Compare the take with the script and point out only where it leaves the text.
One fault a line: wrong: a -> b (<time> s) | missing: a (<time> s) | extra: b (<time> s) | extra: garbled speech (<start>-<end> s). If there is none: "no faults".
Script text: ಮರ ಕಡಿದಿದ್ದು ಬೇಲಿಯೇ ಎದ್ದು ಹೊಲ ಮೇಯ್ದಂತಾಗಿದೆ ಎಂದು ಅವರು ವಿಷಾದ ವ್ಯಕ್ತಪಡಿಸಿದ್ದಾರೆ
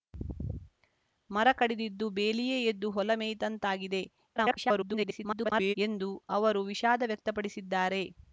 extra: garbled speech (4.4-5.7 s)